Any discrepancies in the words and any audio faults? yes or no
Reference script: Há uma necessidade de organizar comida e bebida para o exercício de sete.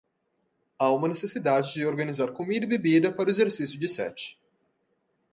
no